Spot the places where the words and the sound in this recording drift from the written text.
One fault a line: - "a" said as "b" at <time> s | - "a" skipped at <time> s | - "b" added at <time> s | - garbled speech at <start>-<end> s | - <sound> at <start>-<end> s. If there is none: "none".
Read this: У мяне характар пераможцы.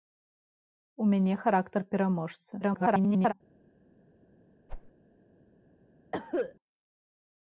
- garbled speech at 2.6-3.3 s
- whoosh at 4.7-4.9 s
- cough at 6.1-6.5 s